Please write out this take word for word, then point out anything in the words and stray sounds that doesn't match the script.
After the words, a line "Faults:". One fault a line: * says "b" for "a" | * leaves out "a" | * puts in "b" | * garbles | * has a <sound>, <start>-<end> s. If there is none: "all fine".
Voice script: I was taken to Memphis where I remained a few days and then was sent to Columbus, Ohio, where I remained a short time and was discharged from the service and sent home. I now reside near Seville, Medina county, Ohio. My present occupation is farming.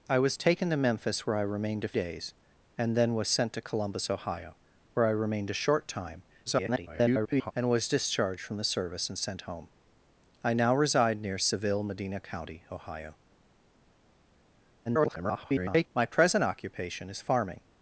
I was taken to Memphis where I remained a days and then was sent to Columbus, Ohio, where I remained a short time [garbled] and was discharged from the service and sent home. I now reside near Seville, Medina county, Ohio. [garbled] My present occupation is farming.
Faults:
* leaves out "few"
* garbles
* garbles